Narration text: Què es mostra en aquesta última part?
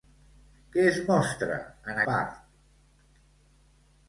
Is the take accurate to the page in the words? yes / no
no